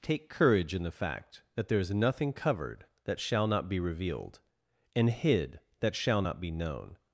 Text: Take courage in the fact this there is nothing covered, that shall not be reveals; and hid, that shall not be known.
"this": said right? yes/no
no